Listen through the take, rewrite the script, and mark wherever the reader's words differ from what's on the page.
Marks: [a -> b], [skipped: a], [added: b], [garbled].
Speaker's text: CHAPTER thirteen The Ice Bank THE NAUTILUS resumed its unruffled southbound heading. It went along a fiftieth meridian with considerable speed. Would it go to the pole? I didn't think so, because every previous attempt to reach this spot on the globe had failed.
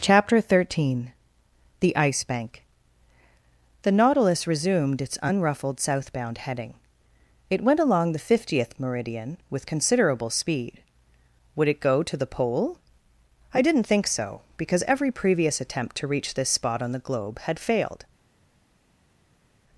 CHAPTER thirteen The Ice Bank THE NAUTILUS resumed its unruffled southbound heading. It went along [a -> the] fiftieth meridian with considerable speed. Would it go to the pole? I didn't think so, because every previous attempt to reach this spot on the globe had failed.